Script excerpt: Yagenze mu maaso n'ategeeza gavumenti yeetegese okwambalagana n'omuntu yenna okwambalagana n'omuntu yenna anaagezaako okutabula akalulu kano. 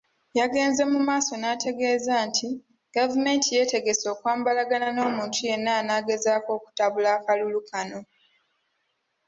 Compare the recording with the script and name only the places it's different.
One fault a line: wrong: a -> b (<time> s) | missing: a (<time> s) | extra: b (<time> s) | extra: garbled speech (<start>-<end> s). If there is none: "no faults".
extra: nti (2.3 s)
missing: okwambalagana n'omuntu yenna (5.7 s)